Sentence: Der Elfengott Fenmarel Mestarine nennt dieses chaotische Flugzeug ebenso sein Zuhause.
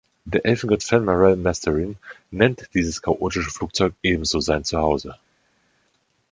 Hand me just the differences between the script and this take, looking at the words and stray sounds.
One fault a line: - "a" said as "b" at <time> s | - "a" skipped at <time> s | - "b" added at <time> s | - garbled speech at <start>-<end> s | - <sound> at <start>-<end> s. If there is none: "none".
none